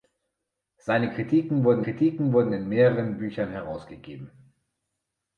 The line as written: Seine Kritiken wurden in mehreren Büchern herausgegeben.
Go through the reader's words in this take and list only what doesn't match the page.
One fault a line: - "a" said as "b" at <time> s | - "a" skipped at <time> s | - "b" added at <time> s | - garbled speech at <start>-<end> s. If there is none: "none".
- "Kritiken wurden" added at 1.8 s